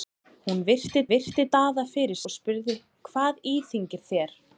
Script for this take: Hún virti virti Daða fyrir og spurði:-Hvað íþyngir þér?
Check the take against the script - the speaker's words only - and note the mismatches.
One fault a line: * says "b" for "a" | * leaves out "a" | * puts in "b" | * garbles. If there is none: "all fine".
all fine